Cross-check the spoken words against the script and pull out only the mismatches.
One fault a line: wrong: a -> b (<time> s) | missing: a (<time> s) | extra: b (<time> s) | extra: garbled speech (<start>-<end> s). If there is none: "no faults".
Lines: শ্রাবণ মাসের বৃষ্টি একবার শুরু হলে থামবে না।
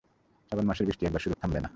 missing: হলে (1.3 s)